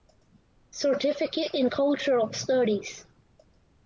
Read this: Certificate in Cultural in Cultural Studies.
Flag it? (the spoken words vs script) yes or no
yes